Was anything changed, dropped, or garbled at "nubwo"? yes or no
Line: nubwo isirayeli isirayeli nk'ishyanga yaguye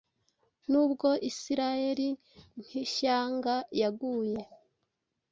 no